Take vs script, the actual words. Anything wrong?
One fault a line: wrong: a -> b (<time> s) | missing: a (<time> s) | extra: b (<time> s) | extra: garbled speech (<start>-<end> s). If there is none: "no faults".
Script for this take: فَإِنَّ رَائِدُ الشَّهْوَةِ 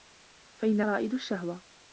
no faults